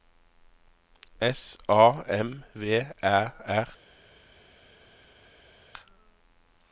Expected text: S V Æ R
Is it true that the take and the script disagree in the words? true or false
true